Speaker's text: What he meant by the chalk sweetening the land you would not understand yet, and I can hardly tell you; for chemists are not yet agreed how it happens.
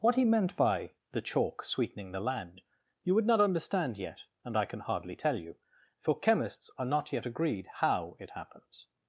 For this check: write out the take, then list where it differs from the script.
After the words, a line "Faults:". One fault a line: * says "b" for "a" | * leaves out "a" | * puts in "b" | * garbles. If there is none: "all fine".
What he meant by the chalk sweetening the land you would not understand yet, and I can hardly tell you; for chemists are not yet agreed how it happens.
Faults:
all fine